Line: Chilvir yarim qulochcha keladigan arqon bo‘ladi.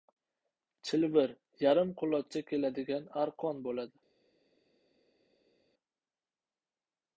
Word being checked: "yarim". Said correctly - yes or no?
yes